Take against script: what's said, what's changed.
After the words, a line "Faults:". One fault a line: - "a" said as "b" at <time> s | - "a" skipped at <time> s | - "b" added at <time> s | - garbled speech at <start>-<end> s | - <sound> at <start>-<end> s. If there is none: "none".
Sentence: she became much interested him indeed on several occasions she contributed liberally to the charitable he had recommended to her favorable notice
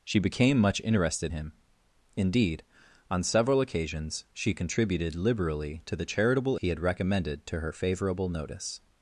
she became much interested him indeed on several occasions she contributed liberally to the charitable he had recommended to her favorable notice
Faults:
none